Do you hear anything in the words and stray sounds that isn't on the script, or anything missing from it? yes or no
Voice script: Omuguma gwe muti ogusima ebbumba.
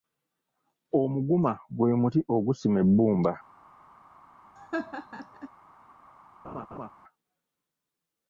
yes